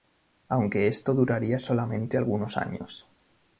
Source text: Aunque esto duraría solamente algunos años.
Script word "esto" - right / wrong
right